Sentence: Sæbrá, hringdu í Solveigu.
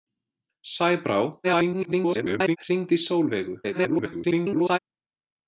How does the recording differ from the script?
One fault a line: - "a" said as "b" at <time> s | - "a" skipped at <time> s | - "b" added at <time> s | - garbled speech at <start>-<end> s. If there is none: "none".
- garbled speech at 1.4-2.6 s
- garbled speech at 3.6-4.8 s